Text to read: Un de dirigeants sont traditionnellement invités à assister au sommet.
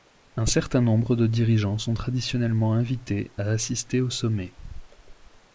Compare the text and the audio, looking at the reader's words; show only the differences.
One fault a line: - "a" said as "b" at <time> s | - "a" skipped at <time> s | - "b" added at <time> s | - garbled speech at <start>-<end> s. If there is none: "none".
- "certain nombre" added at 0.5 s